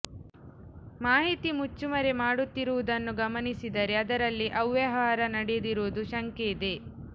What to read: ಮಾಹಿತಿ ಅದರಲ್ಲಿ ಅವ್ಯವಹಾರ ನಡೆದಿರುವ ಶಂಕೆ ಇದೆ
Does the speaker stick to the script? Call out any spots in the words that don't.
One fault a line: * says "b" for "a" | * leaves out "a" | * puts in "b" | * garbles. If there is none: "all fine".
* puts in "ಮುಚ್ಚುಮರೆ ಮಾಡುತ್ತಿರುವುದನ್ನು ಗಮನಿಸಿದರೆ"